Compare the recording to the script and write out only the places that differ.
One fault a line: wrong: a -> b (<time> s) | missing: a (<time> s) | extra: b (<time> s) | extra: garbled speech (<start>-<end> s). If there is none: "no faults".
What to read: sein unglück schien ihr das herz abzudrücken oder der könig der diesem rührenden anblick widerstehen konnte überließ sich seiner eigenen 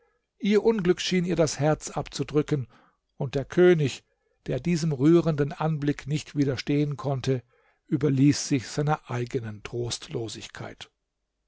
wrong: sein -> ihr (0.4 s)
wrong: oder -> und (3.2 s)
extra: nicht (6.1 s)